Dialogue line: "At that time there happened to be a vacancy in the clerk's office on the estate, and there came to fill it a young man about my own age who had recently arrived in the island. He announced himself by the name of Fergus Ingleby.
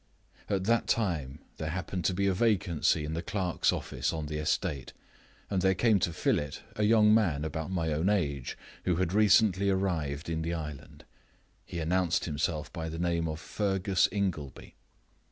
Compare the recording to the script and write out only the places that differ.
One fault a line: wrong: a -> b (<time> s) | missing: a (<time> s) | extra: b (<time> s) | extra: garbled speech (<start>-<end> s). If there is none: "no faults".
no faults